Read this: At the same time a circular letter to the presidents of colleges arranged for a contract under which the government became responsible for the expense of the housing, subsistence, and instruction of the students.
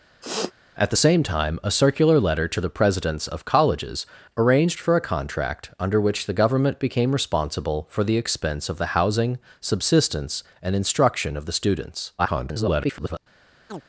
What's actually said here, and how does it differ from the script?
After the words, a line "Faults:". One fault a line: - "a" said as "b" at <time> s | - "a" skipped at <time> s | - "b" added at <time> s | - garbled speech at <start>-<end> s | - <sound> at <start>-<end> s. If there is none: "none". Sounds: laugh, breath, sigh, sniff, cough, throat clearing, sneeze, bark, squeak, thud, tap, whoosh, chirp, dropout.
At the same time a circular letter to the presidents of colleges arranged for a contract under which the government became responsible for the expense of the housing, subsistence, and instruction of the students. [garbled]
Faults:
- sniff at 0.2-0.5 s
- garbled speech at 12.2-13.2 s
- chirp at 13.7-13.8 s